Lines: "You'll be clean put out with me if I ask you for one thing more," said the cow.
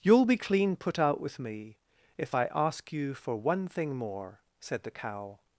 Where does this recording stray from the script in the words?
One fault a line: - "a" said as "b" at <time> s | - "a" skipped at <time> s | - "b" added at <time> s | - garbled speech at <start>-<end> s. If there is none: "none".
none